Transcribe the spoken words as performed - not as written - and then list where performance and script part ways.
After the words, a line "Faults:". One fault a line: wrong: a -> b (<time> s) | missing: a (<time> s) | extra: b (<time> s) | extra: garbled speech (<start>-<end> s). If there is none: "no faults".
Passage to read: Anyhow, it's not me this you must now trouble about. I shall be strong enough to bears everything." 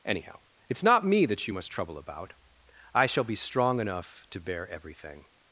Anyhow, it's not me that you must trouble about. I shall be strong enough to bear everything."
Faults:
wrong: this -> that (1.2 s)
missing: now (1.7 s)
wrong: bears -> bear (4.4 s)